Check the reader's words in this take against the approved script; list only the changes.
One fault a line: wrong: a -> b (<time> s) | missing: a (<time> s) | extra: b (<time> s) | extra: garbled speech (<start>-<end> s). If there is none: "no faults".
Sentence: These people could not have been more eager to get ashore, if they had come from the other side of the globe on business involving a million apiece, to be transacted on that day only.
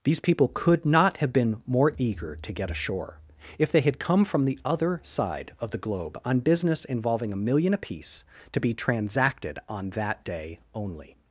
no faults